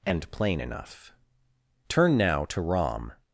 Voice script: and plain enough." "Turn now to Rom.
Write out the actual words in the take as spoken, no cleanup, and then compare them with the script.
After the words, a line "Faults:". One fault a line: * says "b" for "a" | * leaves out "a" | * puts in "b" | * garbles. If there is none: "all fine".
and plain enough." "Turn now to Rom.
Faults:
all fine